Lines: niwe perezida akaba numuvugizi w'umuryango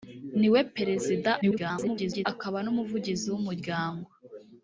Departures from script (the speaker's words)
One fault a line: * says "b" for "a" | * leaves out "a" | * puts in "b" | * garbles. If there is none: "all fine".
* garbles